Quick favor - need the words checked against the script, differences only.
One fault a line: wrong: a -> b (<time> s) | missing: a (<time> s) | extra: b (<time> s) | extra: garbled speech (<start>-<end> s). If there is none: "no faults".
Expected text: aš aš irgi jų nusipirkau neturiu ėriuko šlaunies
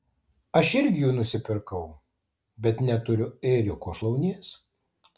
missing: aš (0.7 s)
extra: bet (2.7 s)